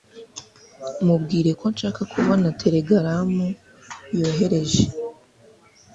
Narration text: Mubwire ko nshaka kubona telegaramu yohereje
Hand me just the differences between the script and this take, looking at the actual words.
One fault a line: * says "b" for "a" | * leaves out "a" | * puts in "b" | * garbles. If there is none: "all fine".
all fine